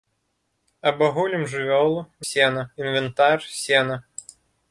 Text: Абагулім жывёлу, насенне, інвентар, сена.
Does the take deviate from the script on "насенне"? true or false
true